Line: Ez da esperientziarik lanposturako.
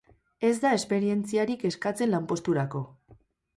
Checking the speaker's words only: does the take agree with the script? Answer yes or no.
no